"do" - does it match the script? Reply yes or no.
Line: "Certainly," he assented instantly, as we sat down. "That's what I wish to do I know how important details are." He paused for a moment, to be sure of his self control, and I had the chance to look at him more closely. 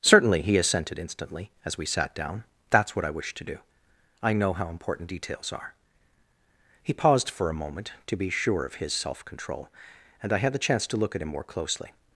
yes